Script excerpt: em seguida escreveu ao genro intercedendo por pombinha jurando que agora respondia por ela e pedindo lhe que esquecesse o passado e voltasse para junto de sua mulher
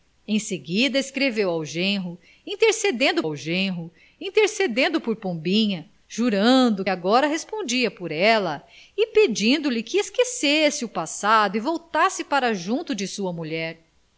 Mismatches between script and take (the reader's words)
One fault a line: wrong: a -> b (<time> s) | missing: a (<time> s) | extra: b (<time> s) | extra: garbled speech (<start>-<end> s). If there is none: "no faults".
extra: ao genro intercedendo (3.2 s)
missing: que (6.8 s)